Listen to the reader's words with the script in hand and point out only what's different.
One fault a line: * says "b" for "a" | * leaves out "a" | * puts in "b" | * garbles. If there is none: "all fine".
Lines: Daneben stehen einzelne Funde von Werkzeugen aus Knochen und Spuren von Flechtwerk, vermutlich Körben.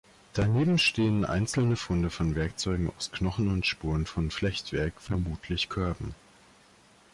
all fine